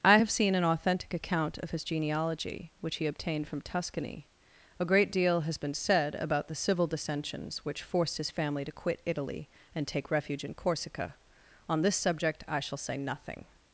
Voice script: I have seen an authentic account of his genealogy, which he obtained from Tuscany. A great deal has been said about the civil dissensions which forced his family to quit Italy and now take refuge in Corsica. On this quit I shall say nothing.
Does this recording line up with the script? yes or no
no